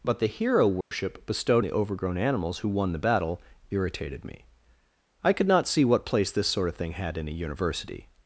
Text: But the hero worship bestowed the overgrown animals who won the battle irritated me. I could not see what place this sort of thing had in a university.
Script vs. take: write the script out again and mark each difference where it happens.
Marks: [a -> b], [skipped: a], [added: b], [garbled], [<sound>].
But the hero worship [dropout] bestowed the overgrown animals who won the battle irritated me. I could not see what place this sort of thing had in a university.